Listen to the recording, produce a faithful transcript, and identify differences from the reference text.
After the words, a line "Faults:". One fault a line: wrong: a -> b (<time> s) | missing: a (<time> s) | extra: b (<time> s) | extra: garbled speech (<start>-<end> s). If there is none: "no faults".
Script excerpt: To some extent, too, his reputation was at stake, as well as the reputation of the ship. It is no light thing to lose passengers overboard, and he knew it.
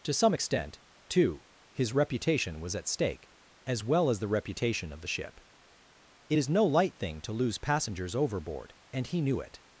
To some extent, too, his reputation was at stake, as well as the reputation of the ship. It is no light thing to lose passengers overboard, and he knew it.
Faults:
no faults